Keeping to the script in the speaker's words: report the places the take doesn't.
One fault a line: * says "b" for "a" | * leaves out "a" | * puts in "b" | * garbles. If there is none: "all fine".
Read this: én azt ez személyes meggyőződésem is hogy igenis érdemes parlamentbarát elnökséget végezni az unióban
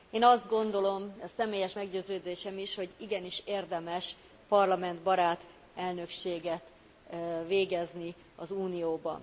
* puts in "gondolom"